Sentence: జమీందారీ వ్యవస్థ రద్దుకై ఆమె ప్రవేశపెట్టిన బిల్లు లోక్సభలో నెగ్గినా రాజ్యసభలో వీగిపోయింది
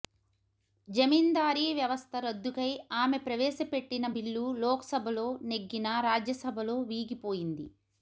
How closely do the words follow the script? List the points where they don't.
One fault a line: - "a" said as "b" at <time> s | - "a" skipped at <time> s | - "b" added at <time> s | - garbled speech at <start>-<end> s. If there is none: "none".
none